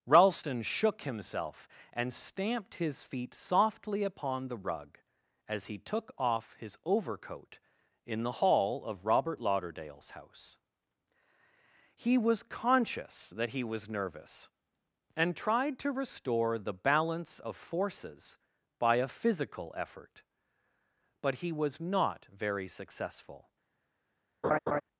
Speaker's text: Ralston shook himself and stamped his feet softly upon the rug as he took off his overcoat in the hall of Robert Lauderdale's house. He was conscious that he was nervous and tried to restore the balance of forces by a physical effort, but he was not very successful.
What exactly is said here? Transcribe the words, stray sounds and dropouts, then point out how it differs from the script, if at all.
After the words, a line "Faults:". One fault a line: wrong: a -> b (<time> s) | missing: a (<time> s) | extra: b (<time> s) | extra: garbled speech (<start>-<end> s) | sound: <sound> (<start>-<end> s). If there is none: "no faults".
Ralston shook himself and stamped his feet softly upon the rug as he took off his overcoat in the hall of Robert Lauderdale's house. He was conscious that he was nervous and tried to restore the balance of forces by a physical effort, but he was not very successful.
Faults:
sound: laugh (24.4-24.8 s)